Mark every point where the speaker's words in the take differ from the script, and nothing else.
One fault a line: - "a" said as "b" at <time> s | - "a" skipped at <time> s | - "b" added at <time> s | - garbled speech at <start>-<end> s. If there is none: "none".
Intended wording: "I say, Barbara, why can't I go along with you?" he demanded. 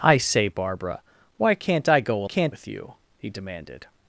- "along" said as "can't" at 2.2 s